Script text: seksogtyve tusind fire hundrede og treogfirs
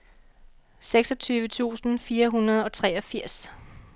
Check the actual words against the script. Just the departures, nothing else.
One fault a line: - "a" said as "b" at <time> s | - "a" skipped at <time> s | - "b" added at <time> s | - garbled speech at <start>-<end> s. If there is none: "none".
none